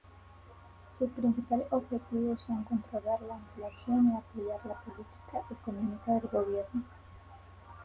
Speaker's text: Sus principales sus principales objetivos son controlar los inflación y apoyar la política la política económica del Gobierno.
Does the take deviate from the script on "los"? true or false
true